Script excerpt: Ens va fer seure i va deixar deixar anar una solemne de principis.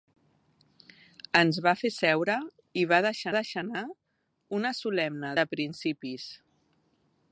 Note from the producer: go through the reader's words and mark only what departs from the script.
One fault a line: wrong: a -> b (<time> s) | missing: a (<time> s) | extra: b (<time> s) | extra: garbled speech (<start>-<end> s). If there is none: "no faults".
no faults